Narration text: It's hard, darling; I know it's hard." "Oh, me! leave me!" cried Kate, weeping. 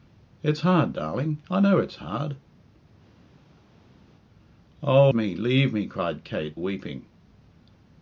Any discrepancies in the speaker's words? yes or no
no